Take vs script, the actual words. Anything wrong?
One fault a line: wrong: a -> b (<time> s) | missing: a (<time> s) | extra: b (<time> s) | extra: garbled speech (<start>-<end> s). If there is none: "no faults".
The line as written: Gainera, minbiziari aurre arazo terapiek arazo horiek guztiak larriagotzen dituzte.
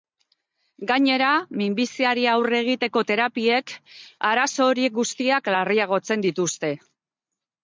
wrong: arazo -> egiteko (2.6 s)